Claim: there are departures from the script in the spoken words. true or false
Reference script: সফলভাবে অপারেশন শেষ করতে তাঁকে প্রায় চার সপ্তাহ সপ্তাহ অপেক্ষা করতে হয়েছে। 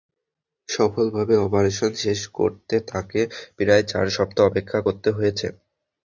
true